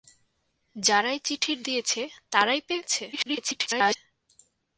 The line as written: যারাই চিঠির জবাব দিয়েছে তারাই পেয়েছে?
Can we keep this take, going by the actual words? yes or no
no